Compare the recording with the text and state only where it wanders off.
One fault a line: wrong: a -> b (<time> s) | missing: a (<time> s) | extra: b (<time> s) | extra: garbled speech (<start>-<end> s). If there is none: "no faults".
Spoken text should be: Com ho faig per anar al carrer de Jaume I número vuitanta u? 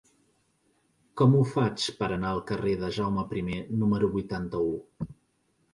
no faults